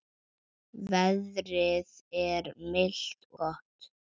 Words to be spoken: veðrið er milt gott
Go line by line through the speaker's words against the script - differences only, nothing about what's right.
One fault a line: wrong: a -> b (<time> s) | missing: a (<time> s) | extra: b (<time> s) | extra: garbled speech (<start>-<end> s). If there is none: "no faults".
no faults